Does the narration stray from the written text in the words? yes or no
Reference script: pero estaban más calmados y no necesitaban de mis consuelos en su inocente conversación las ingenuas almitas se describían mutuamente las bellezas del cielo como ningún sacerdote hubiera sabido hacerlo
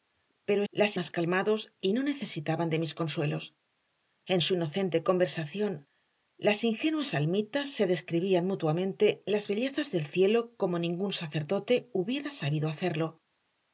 yes